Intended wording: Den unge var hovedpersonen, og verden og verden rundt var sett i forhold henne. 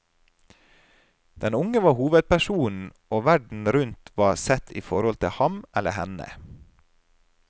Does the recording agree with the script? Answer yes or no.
no